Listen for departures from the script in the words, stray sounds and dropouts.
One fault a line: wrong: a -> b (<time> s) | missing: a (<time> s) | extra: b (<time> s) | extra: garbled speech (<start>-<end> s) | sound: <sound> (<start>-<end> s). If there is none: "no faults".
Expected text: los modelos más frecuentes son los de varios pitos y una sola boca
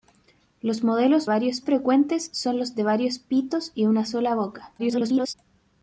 wrong: más -> varios (1.3 s)
extra: garbled speech (4.8-5.3 s)